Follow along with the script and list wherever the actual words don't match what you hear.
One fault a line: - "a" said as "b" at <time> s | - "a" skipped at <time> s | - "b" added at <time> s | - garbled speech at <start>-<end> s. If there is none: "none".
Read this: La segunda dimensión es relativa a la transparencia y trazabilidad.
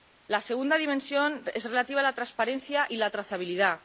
- "la" added at 3.0 s